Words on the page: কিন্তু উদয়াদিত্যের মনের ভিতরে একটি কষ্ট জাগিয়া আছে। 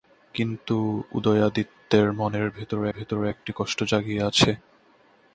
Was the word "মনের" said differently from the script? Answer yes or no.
no